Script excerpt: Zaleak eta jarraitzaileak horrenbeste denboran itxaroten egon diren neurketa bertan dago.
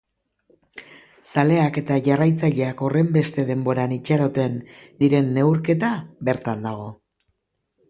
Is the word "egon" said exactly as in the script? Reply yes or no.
no